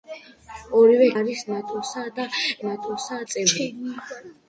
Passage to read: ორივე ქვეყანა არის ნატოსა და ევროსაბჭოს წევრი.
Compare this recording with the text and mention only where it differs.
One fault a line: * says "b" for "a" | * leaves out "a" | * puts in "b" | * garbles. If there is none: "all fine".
* leaves out "ქვეყანა"
* says "ნატოსა" for "ევროსაბჭოს"